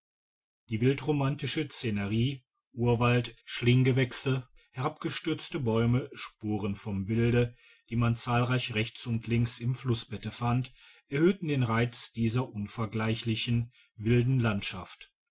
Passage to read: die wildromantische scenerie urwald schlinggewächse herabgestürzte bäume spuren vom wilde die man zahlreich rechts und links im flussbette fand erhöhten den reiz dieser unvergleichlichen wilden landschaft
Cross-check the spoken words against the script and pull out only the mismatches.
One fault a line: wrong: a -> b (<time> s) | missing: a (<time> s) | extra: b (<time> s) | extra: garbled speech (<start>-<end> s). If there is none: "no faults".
no faults